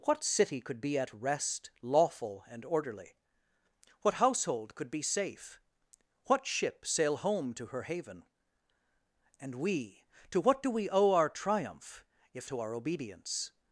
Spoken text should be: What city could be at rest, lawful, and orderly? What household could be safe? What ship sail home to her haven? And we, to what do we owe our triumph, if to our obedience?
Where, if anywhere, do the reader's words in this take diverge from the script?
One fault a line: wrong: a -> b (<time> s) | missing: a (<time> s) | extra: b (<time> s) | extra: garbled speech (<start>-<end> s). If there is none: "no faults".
no faults